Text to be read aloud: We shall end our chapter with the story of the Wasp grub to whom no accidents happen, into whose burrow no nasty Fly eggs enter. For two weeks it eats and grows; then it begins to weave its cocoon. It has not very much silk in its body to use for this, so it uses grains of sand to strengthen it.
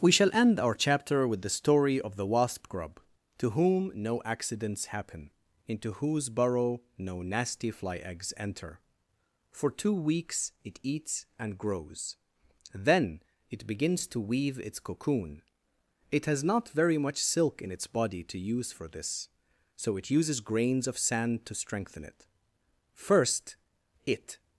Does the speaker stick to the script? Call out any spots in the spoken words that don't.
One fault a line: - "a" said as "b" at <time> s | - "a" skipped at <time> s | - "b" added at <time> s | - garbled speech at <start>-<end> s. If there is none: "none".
- "First it" added at 22.9 s